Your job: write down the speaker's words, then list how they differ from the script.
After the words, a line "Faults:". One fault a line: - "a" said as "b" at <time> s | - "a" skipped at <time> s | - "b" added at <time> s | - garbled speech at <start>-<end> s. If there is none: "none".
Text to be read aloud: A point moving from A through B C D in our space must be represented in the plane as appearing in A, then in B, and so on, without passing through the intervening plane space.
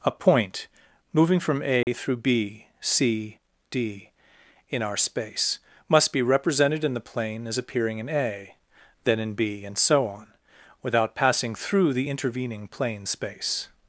A point moving from A through B C D in our space must be represented in the plane as appearing in A, then in B, and so on, without passing through the intervening plane space.
Faults:
none